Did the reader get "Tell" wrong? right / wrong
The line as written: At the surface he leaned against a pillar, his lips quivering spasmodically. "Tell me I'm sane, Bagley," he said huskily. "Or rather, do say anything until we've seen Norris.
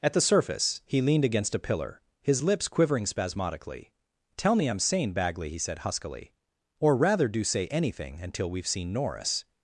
right